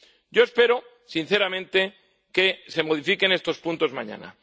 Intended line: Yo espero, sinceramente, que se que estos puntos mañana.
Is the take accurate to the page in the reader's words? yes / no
no